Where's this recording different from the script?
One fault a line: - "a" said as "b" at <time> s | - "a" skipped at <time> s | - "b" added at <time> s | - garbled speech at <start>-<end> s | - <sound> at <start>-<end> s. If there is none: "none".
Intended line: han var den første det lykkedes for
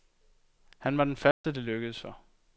- dropout at 1.3-1.4 s